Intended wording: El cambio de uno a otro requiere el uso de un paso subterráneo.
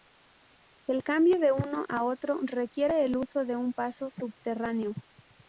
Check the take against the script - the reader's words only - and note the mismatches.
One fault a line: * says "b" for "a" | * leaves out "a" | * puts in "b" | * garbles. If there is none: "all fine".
all fine